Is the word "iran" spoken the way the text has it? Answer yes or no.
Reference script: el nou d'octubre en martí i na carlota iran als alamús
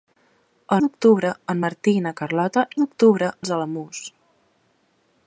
no